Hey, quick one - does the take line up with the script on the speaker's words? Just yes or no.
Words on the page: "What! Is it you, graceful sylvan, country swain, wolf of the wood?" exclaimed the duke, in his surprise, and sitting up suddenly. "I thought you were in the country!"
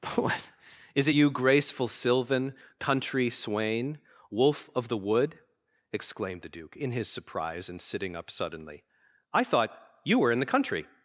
yes